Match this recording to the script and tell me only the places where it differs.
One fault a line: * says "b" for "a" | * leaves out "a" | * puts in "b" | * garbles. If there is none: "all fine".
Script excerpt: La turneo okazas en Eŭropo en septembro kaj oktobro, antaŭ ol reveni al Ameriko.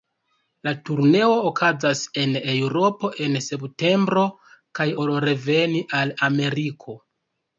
* leaves out "oktobro antaŭ"